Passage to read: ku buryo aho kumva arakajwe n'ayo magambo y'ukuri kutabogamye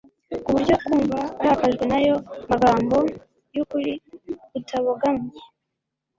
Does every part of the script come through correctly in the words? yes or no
no